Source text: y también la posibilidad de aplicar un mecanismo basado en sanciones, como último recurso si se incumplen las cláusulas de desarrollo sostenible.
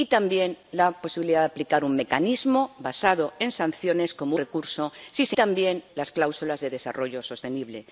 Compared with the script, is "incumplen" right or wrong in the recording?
wrong